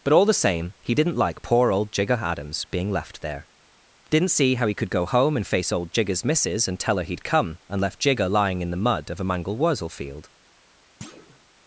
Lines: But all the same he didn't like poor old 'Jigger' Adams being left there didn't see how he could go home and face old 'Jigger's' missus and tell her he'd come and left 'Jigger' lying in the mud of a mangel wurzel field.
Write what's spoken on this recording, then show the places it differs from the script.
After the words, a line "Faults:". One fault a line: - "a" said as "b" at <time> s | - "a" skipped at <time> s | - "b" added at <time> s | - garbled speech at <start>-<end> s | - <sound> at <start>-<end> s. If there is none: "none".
But all the same he didn't like poor old 'Jigger' Adams being left there didn't see how he could go home and face old 'Jigger's' missus and tell her he'd come and left 'Jigger' lying in the mud of a mangel wurzel field.
Faults:
- thud at 11.0-11.4 s